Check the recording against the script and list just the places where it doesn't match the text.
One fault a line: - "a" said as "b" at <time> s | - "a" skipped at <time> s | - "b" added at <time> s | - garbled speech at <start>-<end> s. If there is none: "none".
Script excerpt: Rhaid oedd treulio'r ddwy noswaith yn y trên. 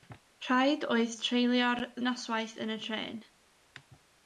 - "ddwy" skipped at 1.8 s